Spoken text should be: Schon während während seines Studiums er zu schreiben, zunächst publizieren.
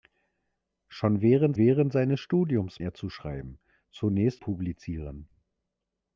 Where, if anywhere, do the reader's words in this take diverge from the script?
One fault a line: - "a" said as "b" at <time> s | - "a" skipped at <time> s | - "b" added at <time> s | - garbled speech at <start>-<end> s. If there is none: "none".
none